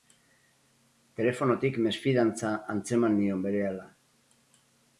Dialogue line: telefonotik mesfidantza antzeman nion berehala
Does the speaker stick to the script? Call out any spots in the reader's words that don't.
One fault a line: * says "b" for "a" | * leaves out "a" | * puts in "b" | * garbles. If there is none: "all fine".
all fine